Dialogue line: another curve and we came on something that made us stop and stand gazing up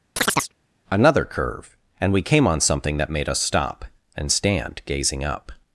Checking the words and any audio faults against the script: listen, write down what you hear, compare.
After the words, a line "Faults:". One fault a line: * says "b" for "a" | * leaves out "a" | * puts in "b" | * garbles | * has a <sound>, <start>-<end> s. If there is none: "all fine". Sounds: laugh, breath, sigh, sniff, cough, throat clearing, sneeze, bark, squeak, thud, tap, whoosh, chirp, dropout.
another curve and we came on something that made us stop and stand gazing up
Faults:
* has a chirp, 0.2-0.5 s